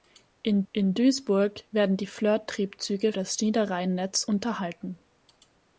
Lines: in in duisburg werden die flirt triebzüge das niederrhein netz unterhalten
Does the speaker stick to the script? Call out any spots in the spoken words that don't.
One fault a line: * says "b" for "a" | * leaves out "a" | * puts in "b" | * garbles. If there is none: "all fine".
all fine